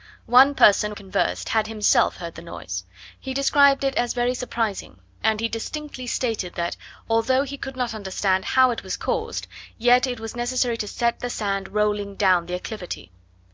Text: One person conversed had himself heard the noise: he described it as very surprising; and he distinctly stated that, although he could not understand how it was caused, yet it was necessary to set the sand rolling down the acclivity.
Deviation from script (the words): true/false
false